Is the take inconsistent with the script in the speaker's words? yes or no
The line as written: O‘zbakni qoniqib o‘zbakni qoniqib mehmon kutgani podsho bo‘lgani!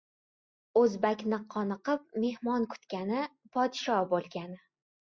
yes